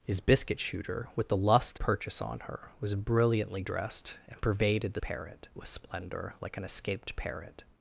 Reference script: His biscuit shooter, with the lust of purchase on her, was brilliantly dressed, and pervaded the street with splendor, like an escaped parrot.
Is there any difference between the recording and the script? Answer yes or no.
yes